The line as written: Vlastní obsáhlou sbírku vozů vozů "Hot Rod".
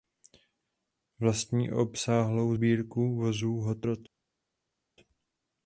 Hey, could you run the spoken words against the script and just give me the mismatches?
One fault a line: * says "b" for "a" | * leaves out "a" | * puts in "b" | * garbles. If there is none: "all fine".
* leaves out "vozů"